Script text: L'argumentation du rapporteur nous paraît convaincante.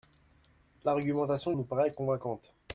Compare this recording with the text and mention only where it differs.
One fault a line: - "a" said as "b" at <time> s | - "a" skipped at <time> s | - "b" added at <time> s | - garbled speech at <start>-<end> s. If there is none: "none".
- "du rapporteur" skipped at 1.5 s